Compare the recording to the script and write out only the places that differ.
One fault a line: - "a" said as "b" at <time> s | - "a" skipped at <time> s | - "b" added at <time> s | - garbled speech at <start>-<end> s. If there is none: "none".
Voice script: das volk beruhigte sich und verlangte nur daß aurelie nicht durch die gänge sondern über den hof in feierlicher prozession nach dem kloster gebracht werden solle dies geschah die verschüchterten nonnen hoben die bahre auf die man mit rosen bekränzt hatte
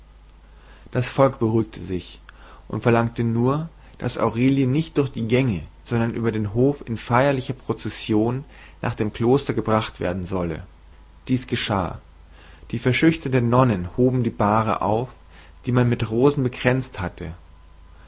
none